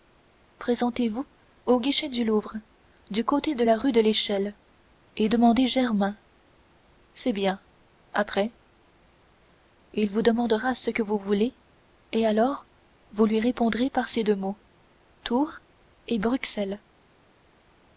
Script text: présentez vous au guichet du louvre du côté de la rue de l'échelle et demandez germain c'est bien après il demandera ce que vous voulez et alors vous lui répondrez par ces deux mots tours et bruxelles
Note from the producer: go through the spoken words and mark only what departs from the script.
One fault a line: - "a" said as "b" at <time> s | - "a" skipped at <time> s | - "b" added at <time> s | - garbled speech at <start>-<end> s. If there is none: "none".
- "vous" added at 10.1 s